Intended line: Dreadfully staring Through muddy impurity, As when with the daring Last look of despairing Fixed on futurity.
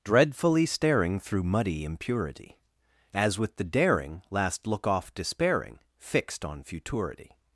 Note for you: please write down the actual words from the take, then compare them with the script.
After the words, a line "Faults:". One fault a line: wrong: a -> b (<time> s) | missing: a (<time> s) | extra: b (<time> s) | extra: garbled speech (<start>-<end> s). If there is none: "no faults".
Dreadfully staring Through muddy impurity, As with the daring Last look off despairing Fixed on futurity.
Faults:
missing: when (3.4 s)
wrong: of -> off (4.9 s)